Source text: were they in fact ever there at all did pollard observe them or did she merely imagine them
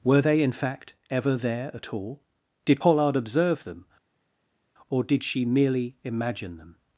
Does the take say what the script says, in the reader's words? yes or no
yes